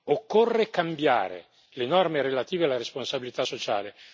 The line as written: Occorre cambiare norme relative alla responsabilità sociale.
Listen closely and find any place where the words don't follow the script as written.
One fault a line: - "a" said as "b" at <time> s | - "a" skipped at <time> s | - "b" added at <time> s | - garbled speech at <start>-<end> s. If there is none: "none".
- "le" added at 1.7 s